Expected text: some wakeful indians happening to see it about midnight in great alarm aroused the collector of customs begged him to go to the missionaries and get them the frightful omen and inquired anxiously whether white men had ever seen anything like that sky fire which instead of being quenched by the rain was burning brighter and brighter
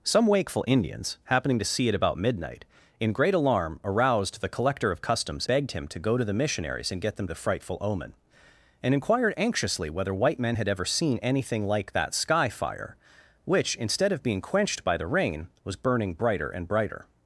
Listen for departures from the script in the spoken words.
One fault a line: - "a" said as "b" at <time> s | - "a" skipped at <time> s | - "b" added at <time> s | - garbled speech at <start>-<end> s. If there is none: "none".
none